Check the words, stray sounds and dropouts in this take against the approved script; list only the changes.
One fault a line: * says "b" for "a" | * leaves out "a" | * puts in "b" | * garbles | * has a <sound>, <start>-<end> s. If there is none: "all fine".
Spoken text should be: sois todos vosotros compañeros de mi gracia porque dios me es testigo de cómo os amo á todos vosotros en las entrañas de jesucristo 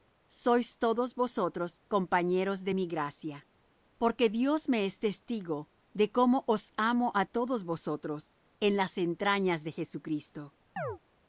* has a chirp, 10.8-11.0 s